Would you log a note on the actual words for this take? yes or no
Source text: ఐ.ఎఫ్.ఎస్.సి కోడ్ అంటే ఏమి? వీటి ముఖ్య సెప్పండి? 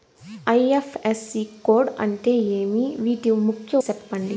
no